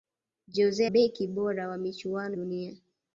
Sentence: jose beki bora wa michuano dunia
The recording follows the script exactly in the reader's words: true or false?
true